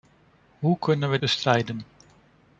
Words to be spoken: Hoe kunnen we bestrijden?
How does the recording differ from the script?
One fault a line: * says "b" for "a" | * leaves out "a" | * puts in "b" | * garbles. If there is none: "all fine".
all fine